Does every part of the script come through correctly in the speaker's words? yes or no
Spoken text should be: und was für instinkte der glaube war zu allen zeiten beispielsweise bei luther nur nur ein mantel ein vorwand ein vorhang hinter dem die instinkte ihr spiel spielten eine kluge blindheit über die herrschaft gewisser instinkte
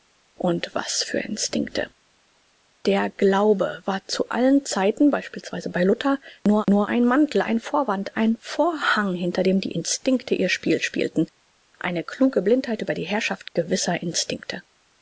yes